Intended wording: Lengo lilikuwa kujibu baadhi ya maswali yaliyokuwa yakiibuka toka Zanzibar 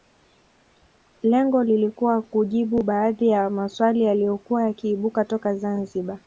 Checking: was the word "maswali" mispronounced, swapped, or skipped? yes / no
no